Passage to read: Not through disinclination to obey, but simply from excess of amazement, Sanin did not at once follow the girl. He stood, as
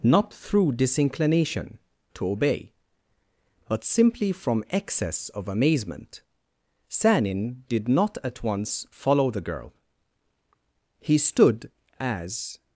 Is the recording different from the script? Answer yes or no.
no